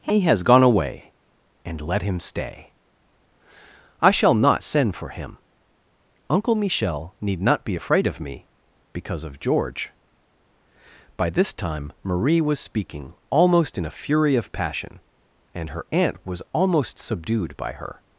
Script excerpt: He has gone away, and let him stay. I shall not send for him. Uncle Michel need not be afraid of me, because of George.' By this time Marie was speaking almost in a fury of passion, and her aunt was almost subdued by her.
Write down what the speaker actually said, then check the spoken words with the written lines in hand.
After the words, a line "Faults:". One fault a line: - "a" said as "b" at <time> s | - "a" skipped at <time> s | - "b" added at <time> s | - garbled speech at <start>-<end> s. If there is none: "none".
He has gone away, and let him stay. I shall not send for him. Uncle Michel need not be afraid of me, because of George.' By this time Marie was speaking almost in a fury of passion, and her aunt was almost subdued by her.
Faults:
none